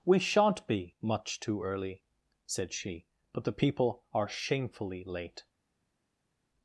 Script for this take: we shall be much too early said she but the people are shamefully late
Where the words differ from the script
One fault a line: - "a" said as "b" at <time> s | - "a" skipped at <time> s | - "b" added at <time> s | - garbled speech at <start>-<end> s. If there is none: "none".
- "shall" said as "shan't" at 0.2 s